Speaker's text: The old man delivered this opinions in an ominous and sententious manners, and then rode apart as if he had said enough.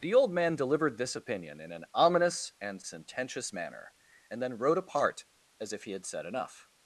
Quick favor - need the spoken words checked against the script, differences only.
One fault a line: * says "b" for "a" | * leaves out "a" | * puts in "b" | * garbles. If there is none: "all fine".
* says "opinion" for "opinions"
* says "manner" for "manners"